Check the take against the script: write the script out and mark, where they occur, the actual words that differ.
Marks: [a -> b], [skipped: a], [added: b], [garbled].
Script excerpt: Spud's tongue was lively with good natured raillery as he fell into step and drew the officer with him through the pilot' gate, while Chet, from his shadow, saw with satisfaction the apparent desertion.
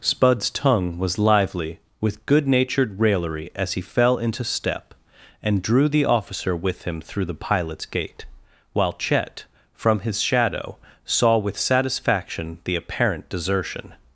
Spud's tongue was lively with good natured raillery as he fell into step and drew the officer with him through the [pilot' -> pilots] gate, while Chet, from his shadow, saw with satisfaction the apparent desertion.